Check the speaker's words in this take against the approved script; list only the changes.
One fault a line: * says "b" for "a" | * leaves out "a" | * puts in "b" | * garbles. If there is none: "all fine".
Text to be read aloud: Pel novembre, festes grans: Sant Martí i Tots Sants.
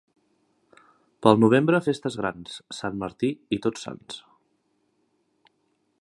all fine